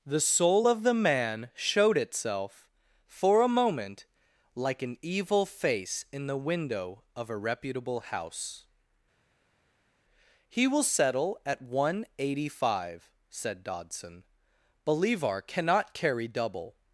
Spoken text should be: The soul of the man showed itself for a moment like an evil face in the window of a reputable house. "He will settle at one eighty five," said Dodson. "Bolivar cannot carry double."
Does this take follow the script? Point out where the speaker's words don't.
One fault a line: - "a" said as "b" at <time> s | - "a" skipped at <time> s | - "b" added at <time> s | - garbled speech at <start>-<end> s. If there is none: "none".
none